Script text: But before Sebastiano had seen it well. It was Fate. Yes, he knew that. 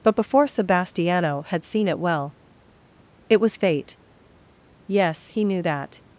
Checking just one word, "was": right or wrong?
right